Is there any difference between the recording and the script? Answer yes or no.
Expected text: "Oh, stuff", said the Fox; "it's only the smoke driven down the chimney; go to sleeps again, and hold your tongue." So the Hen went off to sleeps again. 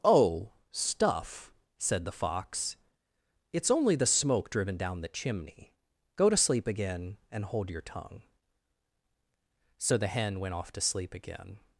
yes